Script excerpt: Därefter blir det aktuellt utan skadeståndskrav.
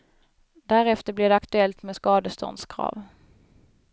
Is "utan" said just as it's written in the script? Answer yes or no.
no